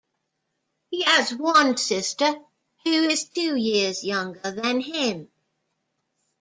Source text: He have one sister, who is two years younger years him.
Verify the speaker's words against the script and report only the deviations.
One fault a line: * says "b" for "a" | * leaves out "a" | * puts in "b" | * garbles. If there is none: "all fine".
* says "has" for "have"
* says "than" for "years"